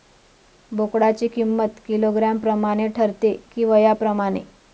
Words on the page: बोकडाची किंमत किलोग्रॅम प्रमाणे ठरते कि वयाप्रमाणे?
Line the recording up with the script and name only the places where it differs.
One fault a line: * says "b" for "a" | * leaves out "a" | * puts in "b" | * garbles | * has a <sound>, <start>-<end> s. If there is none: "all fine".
all fine